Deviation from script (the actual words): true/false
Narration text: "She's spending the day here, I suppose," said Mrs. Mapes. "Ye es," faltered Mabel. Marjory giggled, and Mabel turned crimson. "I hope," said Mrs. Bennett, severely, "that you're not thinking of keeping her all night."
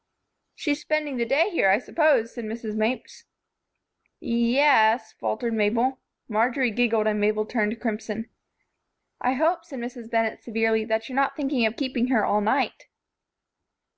false